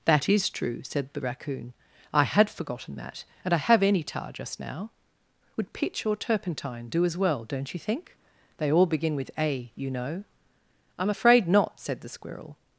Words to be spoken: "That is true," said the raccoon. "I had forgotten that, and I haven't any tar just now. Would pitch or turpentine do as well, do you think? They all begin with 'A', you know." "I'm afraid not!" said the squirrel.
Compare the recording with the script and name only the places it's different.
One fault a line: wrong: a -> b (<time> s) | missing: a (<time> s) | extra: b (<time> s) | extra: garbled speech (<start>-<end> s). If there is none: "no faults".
wrong: haven't -> have (3.6 s)
wrong: do -> don't (7.4 s)